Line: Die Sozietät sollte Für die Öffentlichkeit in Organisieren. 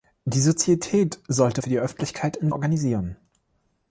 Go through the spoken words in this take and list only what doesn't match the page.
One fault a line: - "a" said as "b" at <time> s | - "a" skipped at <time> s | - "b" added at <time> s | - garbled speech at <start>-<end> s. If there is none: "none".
none